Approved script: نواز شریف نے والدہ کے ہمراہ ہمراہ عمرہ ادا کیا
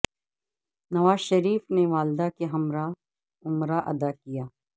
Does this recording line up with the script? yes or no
no